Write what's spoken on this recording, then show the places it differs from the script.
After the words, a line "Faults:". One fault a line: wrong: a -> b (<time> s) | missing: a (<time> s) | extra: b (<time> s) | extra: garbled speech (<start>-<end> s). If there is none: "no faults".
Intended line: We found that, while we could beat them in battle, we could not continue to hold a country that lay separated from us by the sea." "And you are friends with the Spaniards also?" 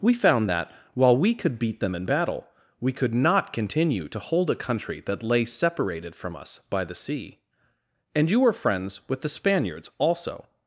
We found that, while we could beat them in battle, we could not continue to hold a country that lay separated from us by the sea." "And you were friends with the Spaniards also?"
Faults:
wrong: are -> were (8.4 s)